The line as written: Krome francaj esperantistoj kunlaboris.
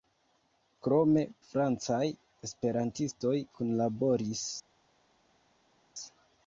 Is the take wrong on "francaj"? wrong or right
right